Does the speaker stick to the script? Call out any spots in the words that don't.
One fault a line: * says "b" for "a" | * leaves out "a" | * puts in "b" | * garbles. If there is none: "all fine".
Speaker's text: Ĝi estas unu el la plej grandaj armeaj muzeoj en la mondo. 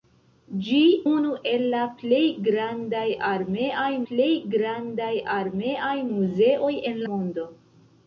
* leaves out "estas"
* puts in "plej grandaj armeaj"
* leaves out "la"